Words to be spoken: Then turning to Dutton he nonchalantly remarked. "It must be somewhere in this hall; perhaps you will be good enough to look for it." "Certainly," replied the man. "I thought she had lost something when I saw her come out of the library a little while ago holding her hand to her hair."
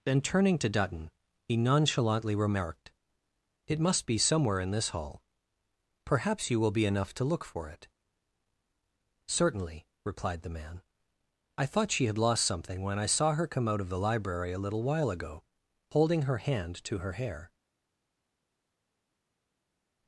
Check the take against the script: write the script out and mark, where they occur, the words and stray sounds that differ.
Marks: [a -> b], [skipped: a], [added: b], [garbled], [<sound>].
Then turning to Dutton he nonchalantly remarked. "It must be somewhere in this hall; perhaps you will be [skipped: good] enough to look for it." "Certainly," replied the man. "I thought she had lost something when I saw her come out of the library a little while ago holding her hand to her hair."